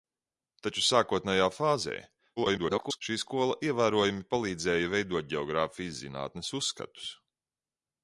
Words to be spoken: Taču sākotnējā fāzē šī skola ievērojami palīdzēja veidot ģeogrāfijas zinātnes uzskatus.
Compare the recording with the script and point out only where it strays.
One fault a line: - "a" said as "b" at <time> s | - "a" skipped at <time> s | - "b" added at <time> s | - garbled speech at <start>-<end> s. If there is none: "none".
- garbled speech at 2.4-3.0 s